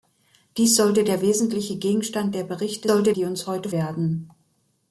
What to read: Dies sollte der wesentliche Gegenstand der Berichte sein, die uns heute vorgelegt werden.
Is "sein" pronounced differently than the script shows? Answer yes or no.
yes